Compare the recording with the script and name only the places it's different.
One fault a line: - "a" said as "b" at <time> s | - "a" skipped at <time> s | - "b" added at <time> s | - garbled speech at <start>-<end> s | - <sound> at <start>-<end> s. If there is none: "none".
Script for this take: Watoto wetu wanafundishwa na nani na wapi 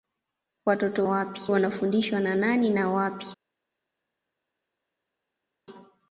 - "wetu" said as "wapi" at 1.0 s